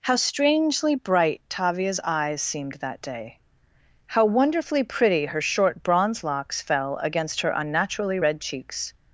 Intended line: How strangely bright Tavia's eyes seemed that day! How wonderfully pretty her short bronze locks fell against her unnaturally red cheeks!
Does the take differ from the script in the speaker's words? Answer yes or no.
no